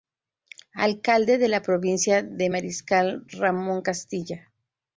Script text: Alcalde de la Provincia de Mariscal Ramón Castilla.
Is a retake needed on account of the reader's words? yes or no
no